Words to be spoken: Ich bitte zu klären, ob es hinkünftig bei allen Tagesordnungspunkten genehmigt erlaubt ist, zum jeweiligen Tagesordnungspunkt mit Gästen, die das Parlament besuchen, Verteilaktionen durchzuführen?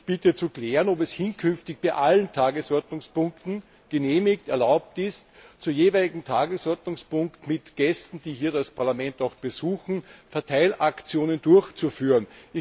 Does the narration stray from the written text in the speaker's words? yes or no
no